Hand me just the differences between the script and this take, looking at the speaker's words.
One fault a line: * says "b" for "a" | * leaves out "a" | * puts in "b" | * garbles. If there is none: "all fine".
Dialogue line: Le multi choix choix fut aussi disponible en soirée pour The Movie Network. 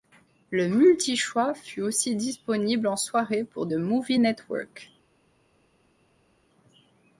* leaves out "choix"